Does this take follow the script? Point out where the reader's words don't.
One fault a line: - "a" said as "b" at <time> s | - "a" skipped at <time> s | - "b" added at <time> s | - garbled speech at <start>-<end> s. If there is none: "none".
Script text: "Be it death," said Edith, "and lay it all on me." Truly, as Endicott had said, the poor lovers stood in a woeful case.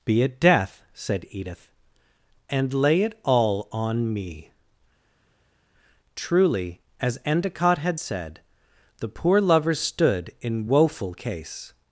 - "a" skipped at 10.7 s